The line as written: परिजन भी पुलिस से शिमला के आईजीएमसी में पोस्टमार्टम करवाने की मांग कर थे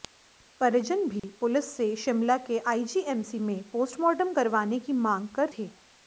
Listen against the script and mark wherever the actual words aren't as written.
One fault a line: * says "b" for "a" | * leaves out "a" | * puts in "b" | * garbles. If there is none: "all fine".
all fine